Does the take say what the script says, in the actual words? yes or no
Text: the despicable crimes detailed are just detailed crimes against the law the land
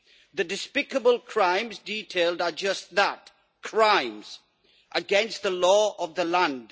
no